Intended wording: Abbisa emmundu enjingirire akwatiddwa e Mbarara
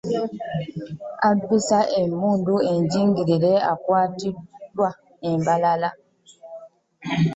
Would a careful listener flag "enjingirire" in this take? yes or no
no